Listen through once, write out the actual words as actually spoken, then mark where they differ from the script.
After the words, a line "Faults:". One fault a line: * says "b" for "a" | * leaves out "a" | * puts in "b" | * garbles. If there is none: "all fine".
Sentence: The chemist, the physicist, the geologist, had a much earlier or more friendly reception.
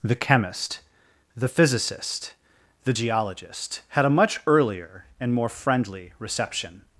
The chemist, the physicist, the geologist, had a much earlier and more friendly reception.
Faults:
* says "and" for "or"